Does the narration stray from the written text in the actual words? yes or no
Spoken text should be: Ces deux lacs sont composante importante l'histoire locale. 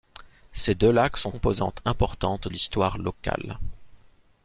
no